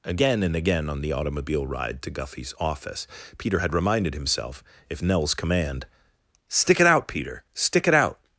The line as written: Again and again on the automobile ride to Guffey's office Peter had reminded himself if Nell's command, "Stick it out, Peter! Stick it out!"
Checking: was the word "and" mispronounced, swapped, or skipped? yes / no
no